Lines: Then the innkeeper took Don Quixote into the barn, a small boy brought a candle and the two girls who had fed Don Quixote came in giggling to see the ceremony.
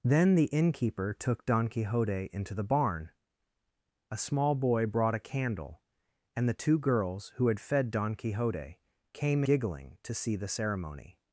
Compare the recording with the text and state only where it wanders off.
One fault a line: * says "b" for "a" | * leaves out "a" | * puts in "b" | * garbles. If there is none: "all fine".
* leaves out "in"